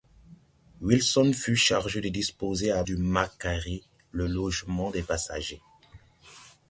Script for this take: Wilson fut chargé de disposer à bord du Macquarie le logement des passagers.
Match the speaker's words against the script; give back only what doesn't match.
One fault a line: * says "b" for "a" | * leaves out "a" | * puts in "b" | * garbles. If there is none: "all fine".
* leaves out "bord"